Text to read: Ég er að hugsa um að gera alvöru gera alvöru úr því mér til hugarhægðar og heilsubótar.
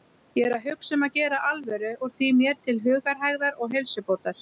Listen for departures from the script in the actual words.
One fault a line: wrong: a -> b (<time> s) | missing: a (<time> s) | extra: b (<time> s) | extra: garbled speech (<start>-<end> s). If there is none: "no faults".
missing: gera alvöru (1.9 s)